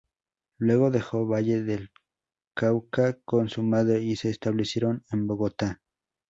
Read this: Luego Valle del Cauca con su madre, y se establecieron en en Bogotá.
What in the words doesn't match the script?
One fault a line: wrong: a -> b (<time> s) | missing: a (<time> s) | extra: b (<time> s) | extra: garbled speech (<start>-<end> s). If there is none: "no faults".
extra: dejó (0.9 s)
missing: en (5.3 s)